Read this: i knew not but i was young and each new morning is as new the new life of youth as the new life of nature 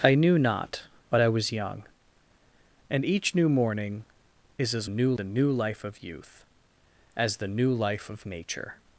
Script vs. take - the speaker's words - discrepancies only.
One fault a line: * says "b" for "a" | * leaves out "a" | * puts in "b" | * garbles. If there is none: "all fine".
all fine